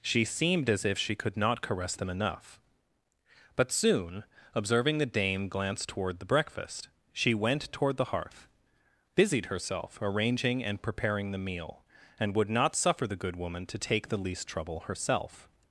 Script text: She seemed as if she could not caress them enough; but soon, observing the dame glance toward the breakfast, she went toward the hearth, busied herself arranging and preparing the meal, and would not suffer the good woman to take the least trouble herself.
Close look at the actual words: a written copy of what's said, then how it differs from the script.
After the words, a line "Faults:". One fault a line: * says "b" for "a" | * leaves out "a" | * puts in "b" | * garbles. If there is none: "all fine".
She seemed as if she could not caress them enough; but soon, observing the dame glance toward the breakfast, she went toward the hearth, busied herself arranging and preparing the meal, and would not suffer the good woman to take the least trouble herself.
Faults:
all fine